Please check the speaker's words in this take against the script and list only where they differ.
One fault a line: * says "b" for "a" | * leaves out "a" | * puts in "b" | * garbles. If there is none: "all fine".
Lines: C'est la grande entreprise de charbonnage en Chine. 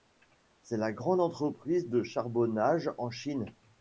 all fine